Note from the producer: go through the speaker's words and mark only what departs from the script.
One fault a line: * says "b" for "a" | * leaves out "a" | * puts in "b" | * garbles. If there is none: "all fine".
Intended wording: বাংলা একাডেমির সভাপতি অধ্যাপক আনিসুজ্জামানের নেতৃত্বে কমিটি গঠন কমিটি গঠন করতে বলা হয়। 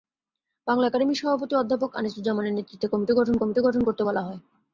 all fine